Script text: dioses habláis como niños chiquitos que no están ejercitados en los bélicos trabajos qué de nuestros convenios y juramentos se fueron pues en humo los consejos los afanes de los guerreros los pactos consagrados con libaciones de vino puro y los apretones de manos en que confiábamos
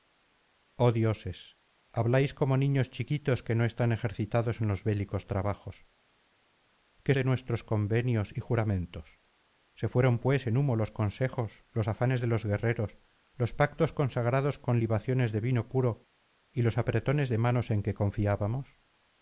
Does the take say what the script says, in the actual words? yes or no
yes